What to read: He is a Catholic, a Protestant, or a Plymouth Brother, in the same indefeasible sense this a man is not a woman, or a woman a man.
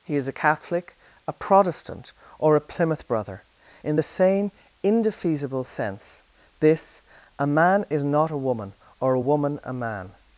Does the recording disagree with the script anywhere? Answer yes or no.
no